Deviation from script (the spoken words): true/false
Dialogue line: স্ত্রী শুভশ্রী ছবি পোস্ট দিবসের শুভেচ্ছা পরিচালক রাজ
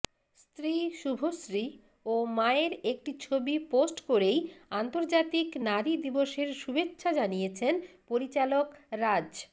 true